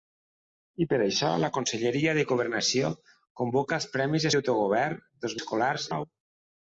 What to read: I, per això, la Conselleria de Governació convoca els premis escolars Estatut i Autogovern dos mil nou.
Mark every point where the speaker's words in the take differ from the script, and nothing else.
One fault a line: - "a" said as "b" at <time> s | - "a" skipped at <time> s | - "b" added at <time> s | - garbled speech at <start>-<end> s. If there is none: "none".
- "escolars Estatut" skipped at 4.3 s
- "mil" said as "escolars" at 5.4 s